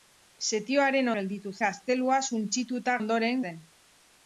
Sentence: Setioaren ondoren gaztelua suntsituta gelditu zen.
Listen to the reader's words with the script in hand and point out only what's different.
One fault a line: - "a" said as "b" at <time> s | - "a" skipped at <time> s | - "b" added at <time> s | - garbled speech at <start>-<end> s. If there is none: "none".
- "ondoren" said as "gelditu" at 1.2 s
- "gelditu" said as "ondoren" at 3.0 s